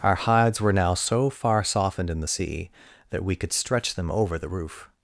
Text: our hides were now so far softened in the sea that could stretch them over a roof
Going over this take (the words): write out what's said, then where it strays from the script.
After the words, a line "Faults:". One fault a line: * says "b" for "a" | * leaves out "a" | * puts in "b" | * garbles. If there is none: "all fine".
our hides were now so far softened in the sea that we could stretch them over the roof
Faults:
* puts in "we"
* says "the" for "a"